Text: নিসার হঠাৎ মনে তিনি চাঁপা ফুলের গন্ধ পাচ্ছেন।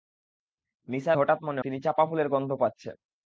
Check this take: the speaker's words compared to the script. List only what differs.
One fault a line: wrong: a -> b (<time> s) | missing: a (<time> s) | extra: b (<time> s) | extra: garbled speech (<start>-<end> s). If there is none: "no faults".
no faults